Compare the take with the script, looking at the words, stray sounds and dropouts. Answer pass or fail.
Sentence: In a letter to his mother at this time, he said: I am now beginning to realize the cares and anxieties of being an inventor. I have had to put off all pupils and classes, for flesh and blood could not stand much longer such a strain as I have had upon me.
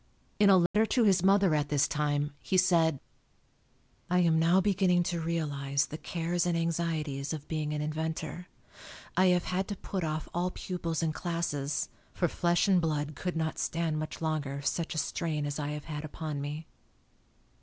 fail